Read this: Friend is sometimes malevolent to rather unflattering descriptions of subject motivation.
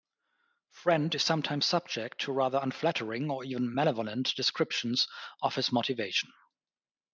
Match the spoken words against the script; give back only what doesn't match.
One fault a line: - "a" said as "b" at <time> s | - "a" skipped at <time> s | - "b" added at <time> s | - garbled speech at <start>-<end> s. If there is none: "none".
- "malevolent" said as "subject" at 1.7 s
- "or even malevolent" added at 3.3 s
- "subject" said as "his" at 5.6 s